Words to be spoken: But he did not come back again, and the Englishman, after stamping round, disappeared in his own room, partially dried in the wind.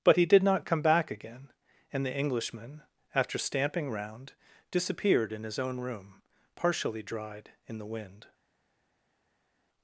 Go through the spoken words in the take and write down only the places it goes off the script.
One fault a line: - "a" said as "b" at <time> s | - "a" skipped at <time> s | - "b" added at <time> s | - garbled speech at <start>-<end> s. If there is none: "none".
none